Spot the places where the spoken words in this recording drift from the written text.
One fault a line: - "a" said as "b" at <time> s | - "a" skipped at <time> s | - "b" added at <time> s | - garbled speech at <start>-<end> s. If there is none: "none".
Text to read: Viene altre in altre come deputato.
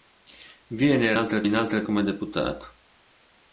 none